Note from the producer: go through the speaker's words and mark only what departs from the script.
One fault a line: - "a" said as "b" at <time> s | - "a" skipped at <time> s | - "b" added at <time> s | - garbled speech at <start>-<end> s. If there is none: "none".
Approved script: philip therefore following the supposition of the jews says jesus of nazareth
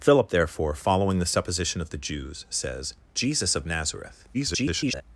- garbled speech at 4.3-5.0 s